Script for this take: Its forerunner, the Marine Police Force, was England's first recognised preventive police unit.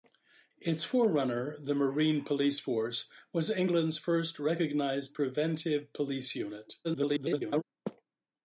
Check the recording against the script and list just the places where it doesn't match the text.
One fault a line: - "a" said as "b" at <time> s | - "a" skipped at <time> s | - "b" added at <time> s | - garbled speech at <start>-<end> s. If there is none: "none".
- garbled speech at 6.8-7.6 s